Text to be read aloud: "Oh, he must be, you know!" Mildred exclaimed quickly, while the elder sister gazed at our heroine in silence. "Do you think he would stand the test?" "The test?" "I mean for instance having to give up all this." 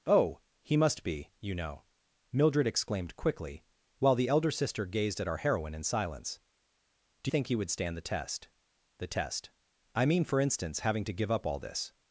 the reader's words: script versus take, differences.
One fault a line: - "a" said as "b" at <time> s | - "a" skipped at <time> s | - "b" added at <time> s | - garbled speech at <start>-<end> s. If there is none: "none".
- "you" skipped at 7.3 s